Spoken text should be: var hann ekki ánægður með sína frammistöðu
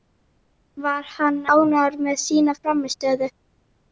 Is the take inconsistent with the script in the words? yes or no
yes